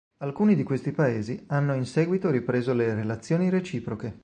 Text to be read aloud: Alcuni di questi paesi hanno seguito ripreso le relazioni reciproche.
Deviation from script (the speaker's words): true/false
true